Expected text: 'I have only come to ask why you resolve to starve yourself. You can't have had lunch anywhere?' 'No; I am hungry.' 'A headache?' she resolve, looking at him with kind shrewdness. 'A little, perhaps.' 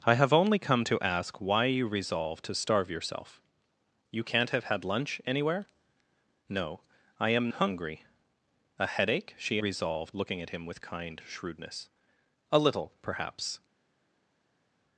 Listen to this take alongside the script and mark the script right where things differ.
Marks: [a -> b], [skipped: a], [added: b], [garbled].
'I have only come to ask why you resolve to starve yourself. You can't have had lunch anywhere?' 'No; I am hungry.' 'A headache?' she resolve, looking at him with kind shrewdness. 'A little, perhaps.'